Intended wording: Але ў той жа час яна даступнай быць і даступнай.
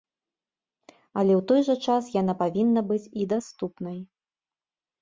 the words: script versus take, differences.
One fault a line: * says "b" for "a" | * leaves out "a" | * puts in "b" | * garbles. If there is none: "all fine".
* says "павінна" for "даступнай"